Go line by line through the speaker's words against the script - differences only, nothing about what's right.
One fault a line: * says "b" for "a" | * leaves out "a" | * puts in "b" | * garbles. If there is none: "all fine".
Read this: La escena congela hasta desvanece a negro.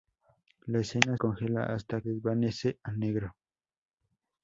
all fine